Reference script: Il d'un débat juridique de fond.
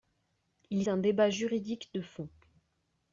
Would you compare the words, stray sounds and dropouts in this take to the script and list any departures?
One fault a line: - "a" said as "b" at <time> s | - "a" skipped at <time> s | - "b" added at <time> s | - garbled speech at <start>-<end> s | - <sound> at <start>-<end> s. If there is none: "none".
none